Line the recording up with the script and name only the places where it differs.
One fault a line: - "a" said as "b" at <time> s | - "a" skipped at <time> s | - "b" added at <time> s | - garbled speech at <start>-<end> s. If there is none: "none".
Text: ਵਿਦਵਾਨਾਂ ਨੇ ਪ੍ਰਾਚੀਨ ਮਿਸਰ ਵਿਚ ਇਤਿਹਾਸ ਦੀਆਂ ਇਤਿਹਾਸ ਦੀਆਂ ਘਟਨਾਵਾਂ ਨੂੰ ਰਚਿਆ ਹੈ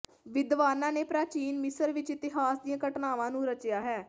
- "ਇਤਿਹਾਸ ਦੀਆਂ" skipped at 2.8 s